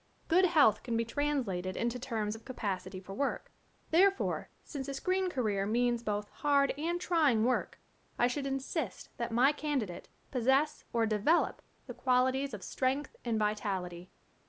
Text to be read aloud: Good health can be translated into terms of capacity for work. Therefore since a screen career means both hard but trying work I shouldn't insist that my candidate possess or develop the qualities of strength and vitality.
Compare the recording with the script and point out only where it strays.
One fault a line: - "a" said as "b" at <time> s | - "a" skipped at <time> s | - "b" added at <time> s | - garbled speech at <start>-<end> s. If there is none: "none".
- "but" said as "and" at 6.8 s
- "shouldn't" said as "should" at 8.3 s